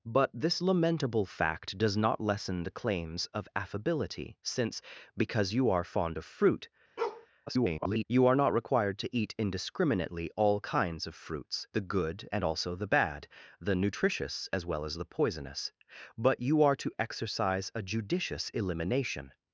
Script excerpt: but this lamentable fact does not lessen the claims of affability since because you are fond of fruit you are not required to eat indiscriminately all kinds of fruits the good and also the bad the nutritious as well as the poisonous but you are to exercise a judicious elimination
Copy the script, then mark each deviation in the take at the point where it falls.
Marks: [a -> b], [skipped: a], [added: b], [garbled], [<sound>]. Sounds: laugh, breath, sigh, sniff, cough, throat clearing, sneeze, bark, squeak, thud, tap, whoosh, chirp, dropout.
but this lamentable fact does not lessen the claims of affability since because you are fond of fruit [bark] [garbled] you are not required to eat indiscriminately all kinds of fruits the good and also the bad the nutritious as well as the poisonous but you are to exercise a judicious elimination